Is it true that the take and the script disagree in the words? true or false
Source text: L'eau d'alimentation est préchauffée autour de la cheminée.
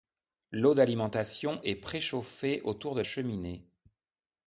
true